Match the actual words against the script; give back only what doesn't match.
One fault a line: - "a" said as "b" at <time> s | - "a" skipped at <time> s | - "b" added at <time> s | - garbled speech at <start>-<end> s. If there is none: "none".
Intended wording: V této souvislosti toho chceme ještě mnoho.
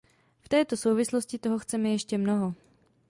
none